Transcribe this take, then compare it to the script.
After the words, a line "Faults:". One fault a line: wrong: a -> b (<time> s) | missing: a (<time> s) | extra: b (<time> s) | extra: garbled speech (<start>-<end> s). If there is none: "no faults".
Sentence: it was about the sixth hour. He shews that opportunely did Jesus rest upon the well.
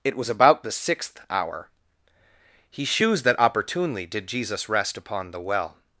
it was about the sixth hour. He shews that opportunely did Jesus rest upon the well.
Faults:
no faults